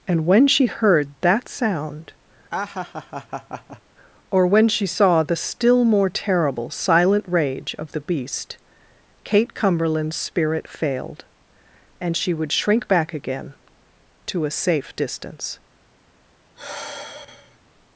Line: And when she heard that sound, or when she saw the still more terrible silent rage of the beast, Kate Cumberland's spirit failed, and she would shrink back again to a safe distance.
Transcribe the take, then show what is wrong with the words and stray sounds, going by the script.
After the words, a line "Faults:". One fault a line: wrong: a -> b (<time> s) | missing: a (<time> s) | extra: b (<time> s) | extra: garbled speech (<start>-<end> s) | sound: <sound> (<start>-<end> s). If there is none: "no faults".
And when she heard that sound, or when she saw the still more terrible silent rage of the beast, Kate Cumberland's spirit failed, and she would shrink back again to a safe distance.
Faults:
sound: laugh (2.5-3.8 s)
sound: sigh (16.6-17.6 s)